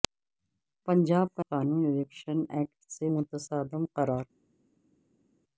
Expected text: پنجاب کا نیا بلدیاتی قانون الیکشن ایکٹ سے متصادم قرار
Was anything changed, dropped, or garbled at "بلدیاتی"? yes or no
yes